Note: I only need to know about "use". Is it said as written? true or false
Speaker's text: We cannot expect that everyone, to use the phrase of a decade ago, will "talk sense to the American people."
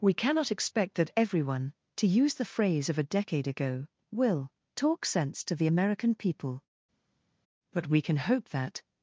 true